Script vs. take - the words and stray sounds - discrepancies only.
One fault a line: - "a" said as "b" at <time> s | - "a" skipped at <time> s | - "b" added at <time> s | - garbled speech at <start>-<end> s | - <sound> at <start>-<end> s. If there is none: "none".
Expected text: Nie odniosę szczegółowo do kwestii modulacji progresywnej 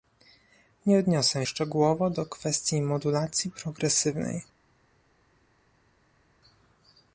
none